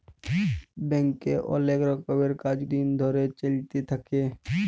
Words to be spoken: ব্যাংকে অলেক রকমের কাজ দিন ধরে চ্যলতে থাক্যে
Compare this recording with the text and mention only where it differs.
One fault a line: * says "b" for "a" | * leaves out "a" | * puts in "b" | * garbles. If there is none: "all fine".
all fine